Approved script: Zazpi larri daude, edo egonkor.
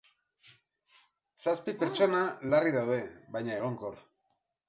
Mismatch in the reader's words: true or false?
true